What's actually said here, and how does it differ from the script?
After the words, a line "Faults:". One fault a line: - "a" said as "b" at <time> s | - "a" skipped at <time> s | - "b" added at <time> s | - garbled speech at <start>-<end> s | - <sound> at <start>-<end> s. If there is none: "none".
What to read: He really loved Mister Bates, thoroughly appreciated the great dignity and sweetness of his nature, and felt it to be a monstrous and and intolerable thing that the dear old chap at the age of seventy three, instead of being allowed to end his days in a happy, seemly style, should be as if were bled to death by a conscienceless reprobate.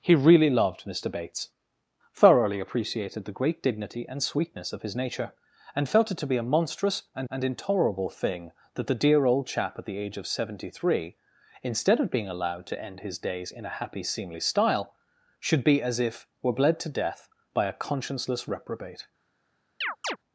He really loved Mister Bates, thoroughly appreciated the great dignity and sweetness of his nature, and felt it to be a monstrous and and intolerable thing that the dear old chap at the age of seventy three, instead of being allowed to end his days in a happy, seemly style, should be as if were bled to death by a conscienceless reprobate.
Faults:
- chirp at 19.8-20.2 s